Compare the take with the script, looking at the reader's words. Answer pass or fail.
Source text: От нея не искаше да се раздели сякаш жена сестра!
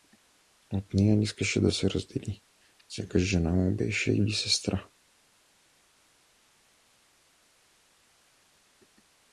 fail